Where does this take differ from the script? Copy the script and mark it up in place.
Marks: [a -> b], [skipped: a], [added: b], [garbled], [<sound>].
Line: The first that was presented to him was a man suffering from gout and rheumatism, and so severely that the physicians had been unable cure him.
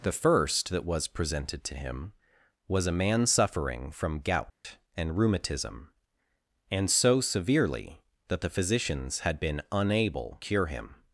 The first that was presented to him was a man suffering from gout [dropout] and rheumatism, and so severely that the physicians had been unable cure him.